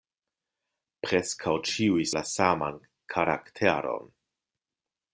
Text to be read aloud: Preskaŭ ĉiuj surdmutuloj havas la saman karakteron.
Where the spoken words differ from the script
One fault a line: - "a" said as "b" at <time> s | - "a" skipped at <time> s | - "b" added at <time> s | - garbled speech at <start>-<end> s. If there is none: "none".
- "surdmutuloj havas" skipped at 2.1 s